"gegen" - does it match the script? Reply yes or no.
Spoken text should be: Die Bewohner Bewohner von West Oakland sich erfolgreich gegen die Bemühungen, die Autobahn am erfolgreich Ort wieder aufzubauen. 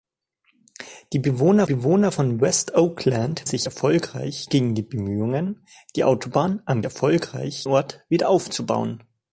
yes